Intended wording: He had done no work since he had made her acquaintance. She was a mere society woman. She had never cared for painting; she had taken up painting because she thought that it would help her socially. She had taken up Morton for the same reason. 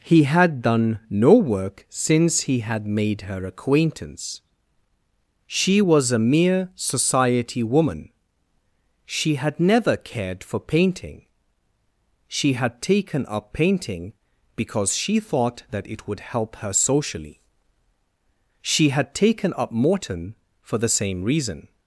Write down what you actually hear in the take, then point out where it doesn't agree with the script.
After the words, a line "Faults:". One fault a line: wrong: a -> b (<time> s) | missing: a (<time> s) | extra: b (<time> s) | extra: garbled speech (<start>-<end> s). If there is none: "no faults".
He had done no work since he had made her acquaintance. She was a mere society woman. She had never cared for painting; she had taken up painting because she thought that it would help her socially. She had taken up Morton for the same reason.
Faults:
no faults